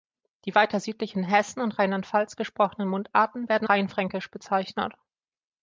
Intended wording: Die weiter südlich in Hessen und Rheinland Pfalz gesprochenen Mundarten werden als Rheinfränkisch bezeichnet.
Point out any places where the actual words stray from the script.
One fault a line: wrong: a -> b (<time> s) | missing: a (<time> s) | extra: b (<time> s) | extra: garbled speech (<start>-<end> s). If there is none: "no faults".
missing: als (3.7 s)